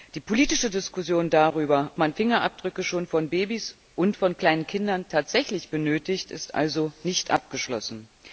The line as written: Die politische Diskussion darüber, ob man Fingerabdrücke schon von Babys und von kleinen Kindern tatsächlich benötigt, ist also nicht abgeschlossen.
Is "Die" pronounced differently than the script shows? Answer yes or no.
no